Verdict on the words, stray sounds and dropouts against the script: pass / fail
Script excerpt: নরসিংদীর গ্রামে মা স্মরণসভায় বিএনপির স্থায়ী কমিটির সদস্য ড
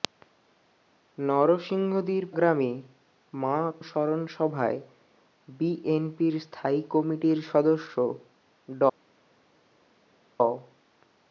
pass